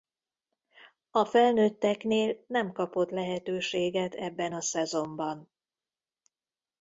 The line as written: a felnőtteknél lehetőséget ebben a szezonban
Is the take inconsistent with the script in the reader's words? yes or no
yes